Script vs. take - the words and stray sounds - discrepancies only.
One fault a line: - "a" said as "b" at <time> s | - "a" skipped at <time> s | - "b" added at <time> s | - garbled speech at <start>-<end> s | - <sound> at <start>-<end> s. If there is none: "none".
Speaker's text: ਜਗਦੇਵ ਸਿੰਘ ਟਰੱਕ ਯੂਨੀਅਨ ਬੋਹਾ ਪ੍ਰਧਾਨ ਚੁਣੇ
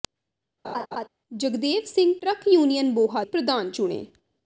- laugh at 0.6-1.1 s